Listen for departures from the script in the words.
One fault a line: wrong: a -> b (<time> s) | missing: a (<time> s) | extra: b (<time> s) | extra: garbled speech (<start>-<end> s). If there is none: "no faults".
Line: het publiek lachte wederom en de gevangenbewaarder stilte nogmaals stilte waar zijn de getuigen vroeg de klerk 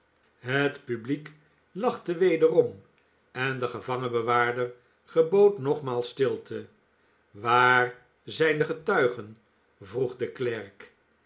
wrong: stilte -> gebood (5.0 s)